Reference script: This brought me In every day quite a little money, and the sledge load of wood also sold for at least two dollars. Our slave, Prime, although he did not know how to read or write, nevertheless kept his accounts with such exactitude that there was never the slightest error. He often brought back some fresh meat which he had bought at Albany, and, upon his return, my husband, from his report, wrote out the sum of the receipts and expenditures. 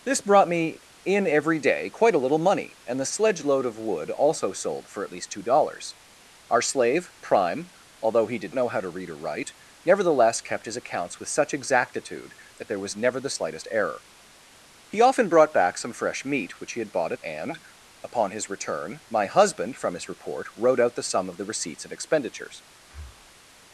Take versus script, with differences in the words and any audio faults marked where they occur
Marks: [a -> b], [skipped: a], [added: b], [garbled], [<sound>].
This brought me In every day quite a little money, and the sledge load of wood also sold for at least two dollars. Our slave, Prime, although he did [skipped: not] know how to read or write, nevertheless kept his accounts with such exactitude that there was never the slightest error. He often brought back some fresh meat which he had bought [skipped: at Albany,] and, upon his return, my husband, from his report, wrote out the sum of the receipts and expenditures. [breath]